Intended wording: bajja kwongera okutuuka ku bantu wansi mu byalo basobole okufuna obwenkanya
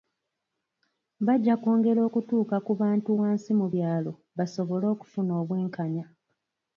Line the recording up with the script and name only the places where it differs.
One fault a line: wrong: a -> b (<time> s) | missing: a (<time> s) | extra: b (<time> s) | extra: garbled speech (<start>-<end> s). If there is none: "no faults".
no faults